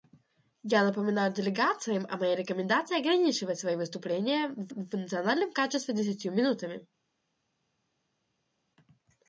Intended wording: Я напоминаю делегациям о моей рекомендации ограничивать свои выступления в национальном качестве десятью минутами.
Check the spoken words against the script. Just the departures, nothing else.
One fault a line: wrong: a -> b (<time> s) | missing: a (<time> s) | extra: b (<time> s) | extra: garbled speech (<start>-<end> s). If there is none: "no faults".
extra: в (4.7 s)